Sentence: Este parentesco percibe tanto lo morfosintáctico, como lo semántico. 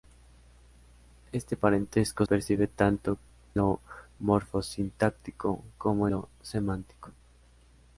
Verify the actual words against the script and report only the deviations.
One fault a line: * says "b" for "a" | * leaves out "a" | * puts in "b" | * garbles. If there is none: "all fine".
all fine